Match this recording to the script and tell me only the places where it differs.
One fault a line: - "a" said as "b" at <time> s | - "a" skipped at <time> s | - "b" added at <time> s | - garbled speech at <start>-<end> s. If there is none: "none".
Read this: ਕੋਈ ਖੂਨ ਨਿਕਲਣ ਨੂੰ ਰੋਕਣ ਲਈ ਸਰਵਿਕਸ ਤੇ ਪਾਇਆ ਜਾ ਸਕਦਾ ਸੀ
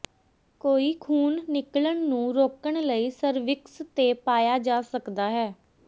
- "ਸੀ" said as "ਹੈ" at 5.3 s